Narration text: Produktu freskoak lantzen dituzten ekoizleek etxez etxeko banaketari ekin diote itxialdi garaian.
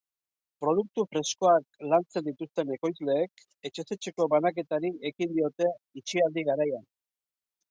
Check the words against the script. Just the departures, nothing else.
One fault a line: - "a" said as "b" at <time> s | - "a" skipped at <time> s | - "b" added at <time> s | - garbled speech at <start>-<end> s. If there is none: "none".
none